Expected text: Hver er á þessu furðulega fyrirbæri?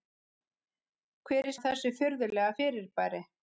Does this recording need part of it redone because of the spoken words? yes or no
no